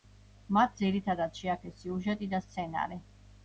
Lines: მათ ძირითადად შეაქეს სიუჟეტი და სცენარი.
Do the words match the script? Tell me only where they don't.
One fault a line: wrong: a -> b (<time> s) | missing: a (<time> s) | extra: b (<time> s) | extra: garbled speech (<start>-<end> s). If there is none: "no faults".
no faults